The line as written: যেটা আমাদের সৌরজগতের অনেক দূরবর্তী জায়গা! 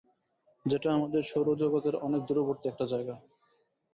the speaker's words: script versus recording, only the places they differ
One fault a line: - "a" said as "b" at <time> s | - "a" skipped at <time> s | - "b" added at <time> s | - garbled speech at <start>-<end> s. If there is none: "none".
- "একটা" added at 2.7 s